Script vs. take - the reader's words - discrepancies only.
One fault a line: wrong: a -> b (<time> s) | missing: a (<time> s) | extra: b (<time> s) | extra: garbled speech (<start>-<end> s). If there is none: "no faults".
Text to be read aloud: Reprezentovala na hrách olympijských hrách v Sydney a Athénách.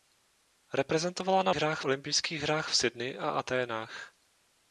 no faults